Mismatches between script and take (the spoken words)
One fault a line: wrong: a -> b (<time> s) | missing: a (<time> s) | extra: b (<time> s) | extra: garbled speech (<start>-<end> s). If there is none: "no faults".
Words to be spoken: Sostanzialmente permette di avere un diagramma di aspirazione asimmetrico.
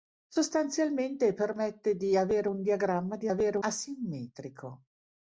wrong: aspirazione -> avere (3.3 s)